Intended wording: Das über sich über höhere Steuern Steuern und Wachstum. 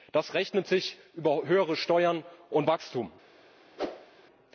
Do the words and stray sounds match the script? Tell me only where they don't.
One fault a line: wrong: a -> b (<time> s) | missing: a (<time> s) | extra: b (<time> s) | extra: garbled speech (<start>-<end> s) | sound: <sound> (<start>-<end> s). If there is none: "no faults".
wrong: über -> rechnet (0.3 s)
missing: Steuern (2.2 s)
sound: whoosh (3.8-4.1 s)